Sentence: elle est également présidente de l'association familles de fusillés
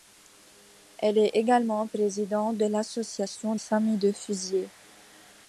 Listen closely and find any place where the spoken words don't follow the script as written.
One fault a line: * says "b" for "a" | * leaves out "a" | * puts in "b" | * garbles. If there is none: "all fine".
all fine